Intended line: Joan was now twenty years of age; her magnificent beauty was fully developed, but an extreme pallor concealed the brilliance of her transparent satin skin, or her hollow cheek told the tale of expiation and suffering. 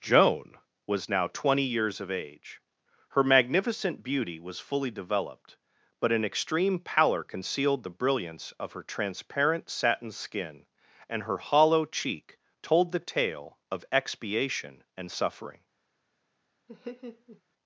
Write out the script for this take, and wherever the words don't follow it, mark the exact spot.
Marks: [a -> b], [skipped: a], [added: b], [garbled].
Joan was now twenty years of age; her magnificent beauty was fully developed, but an extreme pallor concealed the brilliance of her transparent satin skin, [or -> and] her hollow cheek told the tale of expiation and suffering.